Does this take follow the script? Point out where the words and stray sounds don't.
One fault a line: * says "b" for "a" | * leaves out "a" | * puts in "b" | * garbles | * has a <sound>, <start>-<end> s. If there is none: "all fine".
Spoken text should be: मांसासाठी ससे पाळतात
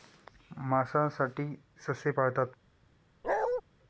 * has a bark, 3.2-3.6 s